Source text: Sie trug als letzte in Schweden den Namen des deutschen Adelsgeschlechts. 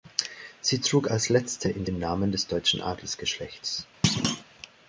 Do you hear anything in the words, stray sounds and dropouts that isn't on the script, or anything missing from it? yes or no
yes